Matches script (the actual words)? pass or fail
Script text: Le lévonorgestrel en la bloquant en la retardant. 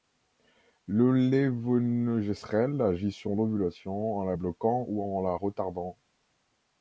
fail